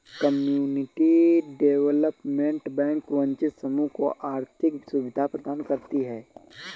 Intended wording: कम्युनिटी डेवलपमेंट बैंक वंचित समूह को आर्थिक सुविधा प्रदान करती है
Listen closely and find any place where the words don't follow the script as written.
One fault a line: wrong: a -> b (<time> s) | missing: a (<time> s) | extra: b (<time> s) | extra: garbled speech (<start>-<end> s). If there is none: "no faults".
no faults